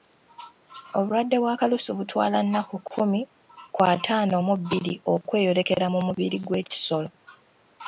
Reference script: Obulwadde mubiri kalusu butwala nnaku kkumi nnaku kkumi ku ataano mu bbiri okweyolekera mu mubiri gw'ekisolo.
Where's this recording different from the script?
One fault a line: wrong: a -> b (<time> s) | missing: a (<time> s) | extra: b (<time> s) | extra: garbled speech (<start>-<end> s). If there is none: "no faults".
wrong: mubiri -> bwa (1.4 s)
missing: nnaku kkumi (3.2 s)